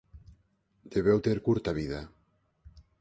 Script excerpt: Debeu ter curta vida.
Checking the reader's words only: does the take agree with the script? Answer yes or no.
yes